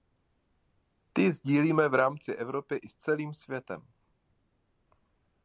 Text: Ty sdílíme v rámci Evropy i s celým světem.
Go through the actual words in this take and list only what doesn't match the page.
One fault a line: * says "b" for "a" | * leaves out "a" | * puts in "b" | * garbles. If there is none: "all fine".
all fine